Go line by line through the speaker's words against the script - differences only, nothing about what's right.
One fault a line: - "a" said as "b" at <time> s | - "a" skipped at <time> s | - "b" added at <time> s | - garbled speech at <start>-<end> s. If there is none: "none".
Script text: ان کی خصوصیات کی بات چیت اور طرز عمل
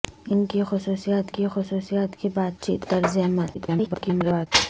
- "خصوصیات کی" added at 1.5 s
- "اور" skipped at 2.9 s
- garbled speech at 3.5-4.5 s